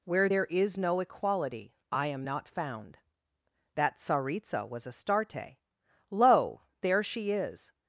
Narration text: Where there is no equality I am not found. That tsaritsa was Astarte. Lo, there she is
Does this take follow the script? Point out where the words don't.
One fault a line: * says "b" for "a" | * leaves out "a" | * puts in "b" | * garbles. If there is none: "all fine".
all fine